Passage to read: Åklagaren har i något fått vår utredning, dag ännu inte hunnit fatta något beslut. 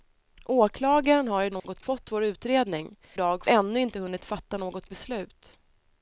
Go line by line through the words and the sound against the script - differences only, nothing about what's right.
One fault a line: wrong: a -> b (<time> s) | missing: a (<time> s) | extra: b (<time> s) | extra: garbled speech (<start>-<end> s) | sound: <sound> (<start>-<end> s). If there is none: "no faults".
sound: dropout (1.6-1.6 s)